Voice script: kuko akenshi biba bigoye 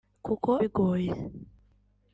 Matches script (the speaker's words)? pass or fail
fail